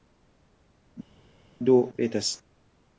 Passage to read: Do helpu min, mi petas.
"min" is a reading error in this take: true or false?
true